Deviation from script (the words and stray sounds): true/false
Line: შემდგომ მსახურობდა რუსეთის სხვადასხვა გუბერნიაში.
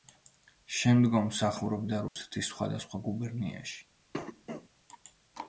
true